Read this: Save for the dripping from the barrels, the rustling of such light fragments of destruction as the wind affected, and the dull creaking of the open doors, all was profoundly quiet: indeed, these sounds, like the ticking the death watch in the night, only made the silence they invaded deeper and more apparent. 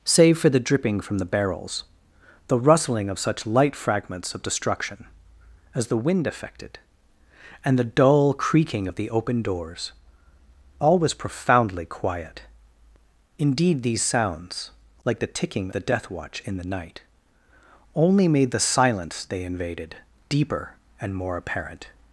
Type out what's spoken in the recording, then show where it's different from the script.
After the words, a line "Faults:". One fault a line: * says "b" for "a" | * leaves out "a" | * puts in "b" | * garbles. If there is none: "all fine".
Save for the dripping from the barrels, the rustling of such light fragments of destruction as the wind affected, and the dull creaking of the open doors, all was profoundly quiet: indeed, these sounds, like the ticking the death watch in the night, only made the silence they invaded deeper and more apparent.
Faults:
all fine